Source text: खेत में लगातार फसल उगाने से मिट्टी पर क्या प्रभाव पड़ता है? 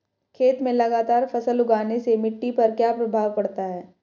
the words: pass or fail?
pass